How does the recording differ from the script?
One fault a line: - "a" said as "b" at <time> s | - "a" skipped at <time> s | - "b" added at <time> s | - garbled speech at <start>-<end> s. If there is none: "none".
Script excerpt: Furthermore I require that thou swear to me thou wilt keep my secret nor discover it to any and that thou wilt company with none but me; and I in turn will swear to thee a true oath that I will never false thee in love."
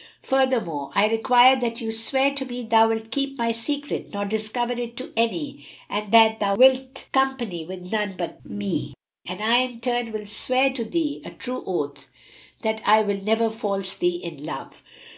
none